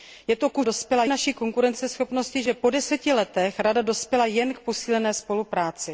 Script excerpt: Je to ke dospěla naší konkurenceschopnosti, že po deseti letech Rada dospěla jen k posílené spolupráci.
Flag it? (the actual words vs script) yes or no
no